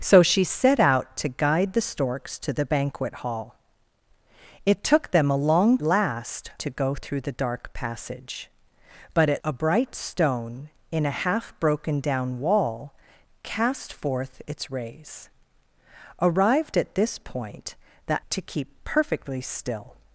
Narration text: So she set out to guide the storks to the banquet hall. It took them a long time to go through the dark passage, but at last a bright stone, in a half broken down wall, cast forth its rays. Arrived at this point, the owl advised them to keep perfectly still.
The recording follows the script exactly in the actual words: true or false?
false